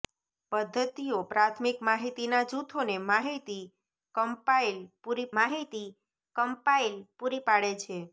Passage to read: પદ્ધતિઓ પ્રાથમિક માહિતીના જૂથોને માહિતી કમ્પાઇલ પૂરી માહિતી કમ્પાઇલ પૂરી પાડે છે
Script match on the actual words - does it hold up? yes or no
yes